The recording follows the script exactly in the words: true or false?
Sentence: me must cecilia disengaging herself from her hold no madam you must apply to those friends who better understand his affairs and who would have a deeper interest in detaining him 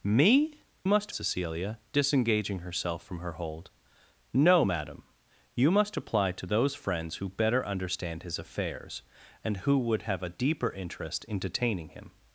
true